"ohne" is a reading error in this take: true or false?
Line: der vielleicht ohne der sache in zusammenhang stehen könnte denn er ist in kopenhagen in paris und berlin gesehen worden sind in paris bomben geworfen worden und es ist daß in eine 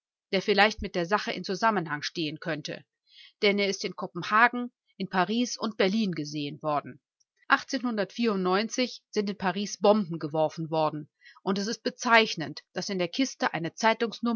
true